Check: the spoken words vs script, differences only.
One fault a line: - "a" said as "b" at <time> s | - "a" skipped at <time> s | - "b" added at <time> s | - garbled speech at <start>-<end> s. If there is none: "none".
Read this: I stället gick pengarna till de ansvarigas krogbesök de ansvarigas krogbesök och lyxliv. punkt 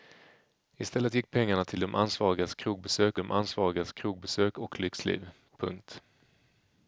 none